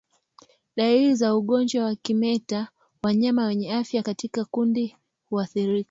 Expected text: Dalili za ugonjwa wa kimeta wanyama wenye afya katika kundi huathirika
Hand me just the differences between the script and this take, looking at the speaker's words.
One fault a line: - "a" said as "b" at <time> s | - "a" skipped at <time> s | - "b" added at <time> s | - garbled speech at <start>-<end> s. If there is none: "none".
none